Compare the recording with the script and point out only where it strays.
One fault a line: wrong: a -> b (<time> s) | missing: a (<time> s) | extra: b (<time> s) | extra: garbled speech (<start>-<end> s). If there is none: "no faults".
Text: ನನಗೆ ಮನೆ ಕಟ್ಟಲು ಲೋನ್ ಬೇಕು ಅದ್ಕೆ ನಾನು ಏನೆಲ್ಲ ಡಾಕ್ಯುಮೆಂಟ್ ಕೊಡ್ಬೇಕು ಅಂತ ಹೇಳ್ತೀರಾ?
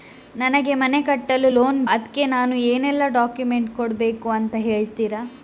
missing: ಬೇಕು (1.8 s)